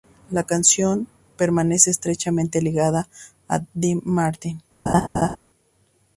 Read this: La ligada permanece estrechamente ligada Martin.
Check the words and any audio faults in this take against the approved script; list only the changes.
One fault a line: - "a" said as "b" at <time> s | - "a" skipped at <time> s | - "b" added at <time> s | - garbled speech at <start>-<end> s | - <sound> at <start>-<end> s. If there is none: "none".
- "ligada" said as "canción" at 0.5 s
- "a Dean" added at 3.5 s
- laugh at 4.9-5.4 s